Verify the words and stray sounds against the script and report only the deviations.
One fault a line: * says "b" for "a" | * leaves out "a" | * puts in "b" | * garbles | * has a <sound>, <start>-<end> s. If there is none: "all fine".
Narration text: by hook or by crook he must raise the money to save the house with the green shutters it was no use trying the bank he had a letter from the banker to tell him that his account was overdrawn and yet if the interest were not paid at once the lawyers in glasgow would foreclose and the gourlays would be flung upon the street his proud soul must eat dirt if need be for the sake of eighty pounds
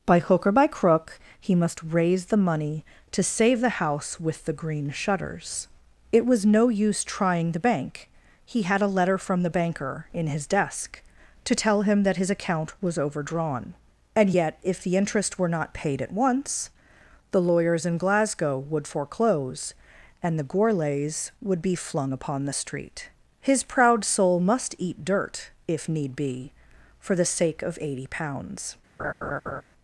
* puts in "in his desk"
* has a laugh, 29.0-29.6 s